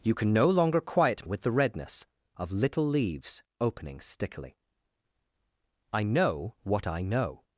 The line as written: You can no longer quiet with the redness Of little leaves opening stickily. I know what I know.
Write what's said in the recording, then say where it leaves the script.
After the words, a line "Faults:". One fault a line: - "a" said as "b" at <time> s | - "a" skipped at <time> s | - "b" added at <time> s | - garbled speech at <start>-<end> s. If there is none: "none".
You can no longer quiet with the redness Of little leaves opening stickily. I know what I know.
Faults:
none